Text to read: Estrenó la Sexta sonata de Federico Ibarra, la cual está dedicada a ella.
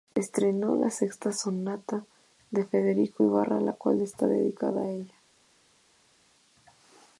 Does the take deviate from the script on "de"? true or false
false